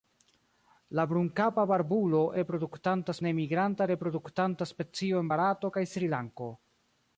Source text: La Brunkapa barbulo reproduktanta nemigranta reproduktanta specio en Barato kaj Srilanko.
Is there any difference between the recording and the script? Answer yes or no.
no